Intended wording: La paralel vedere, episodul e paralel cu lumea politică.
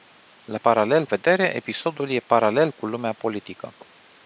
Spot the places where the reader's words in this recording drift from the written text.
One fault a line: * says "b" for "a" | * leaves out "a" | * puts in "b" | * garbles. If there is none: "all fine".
all fine